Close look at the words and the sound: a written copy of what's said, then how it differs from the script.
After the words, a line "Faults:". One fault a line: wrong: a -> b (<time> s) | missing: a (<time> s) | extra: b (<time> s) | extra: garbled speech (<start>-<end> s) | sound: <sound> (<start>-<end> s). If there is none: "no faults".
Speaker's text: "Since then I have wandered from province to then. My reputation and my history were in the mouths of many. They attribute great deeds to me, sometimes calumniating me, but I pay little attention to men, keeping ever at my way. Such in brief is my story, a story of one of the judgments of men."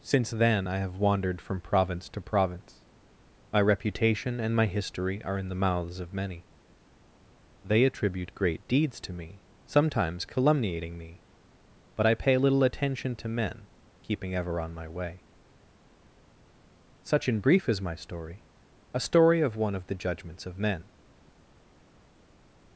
"Since then I have wandered from province to province. My reputation and my history are in the mouths of many. They attribute great deeds to me, sometimes calumniating me, but I pay little attention to men, keeping ever on my way. Such in brief is my story, a story of one of the judgments of men."
Faults:
wrong: then -> province (2.2 s)
wrong: were -> are (5.2 s)
wrong: at -> on (14.6 s)